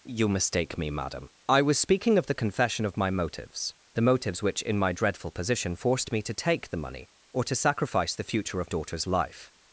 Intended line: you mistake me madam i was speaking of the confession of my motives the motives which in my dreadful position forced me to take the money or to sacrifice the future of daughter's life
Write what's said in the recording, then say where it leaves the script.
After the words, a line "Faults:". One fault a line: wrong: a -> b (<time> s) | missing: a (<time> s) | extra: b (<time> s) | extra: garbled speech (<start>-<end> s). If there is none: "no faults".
you mistake me madam i was speaking of the confession of my motives the motives which in my dreadful position forced me to take the money or to sacrifice the future of daughter's life
Faults:
no faults